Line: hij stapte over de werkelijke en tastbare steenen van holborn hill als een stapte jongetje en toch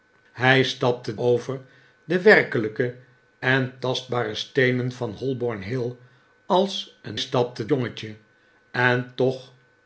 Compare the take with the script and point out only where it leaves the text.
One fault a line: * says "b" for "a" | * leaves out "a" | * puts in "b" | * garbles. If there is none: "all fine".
all fine